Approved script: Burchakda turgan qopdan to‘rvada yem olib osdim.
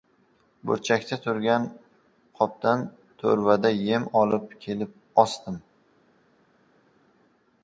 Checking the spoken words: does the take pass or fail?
fail